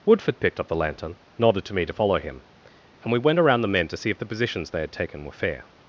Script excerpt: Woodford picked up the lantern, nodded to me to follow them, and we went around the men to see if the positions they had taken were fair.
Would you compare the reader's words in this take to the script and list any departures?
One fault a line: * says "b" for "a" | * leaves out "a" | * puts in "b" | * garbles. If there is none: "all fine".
* says "him" for "them"